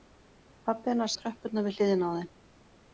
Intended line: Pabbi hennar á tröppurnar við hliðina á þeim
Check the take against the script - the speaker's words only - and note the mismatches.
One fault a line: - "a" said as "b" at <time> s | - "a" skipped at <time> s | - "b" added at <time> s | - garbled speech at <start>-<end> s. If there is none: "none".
none